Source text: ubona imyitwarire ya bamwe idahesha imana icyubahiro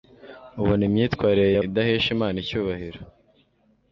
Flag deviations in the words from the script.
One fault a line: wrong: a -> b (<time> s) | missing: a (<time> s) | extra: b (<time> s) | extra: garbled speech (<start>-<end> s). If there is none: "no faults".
missing: bamwe (1.6 s)